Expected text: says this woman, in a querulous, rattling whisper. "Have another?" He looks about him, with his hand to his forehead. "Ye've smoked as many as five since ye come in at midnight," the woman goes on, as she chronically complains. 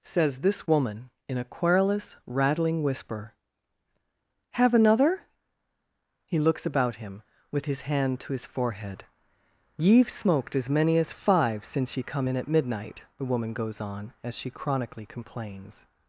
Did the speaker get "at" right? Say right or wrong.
right